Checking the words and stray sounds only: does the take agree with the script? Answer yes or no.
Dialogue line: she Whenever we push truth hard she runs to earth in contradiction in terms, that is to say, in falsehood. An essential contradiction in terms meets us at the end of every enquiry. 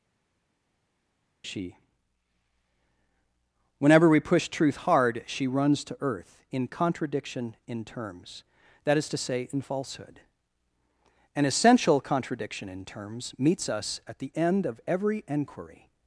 yes